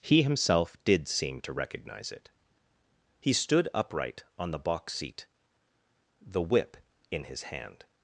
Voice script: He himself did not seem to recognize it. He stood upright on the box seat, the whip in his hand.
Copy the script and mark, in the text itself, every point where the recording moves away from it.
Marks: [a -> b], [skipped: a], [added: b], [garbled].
He himself did [skipped: not] seem to recognize it. He stood upright on the box seat, the whip in his hand.